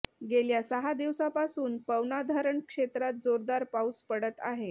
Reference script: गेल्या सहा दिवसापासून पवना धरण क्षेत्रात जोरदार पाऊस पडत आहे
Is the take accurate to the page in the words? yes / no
yes